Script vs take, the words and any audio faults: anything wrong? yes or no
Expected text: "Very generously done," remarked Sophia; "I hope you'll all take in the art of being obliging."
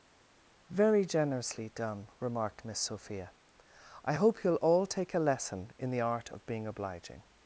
yes